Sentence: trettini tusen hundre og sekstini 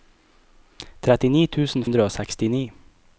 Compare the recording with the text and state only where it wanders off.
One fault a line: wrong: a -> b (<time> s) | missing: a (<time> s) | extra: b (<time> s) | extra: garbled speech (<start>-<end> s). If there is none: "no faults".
no faults